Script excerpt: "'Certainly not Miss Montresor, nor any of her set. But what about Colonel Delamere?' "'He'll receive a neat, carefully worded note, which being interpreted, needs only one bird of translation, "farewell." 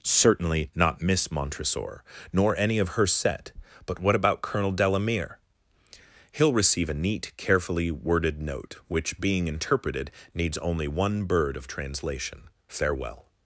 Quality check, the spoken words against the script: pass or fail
pass